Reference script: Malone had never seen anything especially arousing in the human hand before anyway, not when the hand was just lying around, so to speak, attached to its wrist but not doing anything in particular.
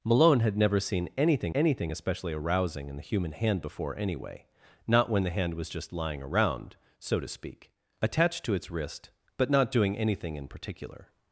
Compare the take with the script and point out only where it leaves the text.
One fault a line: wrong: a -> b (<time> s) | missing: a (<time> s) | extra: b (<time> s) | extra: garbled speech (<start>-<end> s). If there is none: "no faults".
extra: anything (1.5 s)